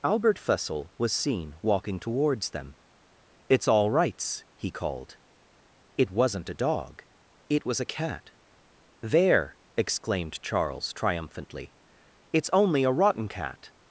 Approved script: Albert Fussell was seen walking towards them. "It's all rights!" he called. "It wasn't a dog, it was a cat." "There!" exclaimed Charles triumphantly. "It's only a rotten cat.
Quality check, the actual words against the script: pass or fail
pass